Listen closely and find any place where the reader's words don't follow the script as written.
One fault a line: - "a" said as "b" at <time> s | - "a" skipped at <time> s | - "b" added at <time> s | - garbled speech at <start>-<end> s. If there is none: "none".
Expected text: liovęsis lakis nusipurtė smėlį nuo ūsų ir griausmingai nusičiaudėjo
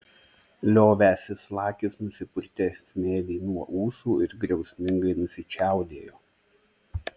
none